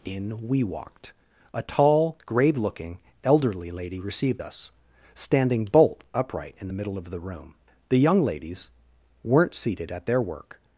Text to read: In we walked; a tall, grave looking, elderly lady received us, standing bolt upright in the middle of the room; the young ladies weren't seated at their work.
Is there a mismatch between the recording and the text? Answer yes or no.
no